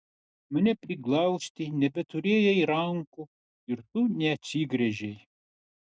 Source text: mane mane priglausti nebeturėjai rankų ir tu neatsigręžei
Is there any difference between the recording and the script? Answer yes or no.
yes